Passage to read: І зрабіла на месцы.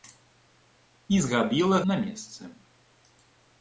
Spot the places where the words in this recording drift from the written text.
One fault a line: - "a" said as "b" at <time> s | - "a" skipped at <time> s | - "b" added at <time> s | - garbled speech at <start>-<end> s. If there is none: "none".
none